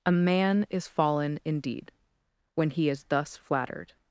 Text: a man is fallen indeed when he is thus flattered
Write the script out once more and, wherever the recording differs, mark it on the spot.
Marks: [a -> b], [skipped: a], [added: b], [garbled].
a man is fallen indeed when he is thus flattered